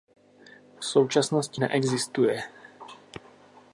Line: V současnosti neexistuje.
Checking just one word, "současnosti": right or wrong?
right